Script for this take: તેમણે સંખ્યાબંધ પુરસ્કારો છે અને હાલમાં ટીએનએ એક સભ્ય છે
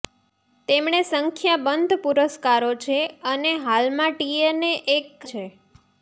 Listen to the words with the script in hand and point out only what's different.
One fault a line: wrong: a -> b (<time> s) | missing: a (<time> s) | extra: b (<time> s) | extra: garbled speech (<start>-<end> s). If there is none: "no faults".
missing: સભ્ય (5.1 s)